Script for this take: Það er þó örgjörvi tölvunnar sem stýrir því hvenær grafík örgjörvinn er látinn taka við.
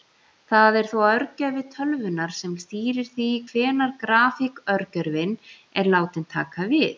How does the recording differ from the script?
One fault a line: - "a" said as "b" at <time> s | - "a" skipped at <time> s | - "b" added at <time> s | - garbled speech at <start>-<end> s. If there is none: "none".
none